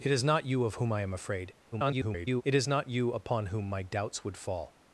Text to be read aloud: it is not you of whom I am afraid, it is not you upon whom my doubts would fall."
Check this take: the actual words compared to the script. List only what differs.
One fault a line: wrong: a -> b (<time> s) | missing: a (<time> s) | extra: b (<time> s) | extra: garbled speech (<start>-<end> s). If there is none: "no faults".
extra: garbled speech (1.7-2.4 s)